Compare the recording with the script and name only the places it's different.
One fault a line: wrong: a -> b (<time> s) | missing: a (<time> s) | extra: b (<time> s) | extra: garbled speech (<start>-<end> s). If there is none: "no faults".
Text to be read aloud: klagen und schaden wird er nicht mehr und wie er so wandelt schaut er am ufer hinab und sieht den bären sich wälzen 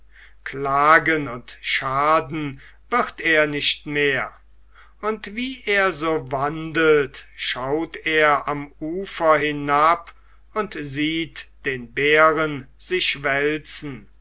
no faults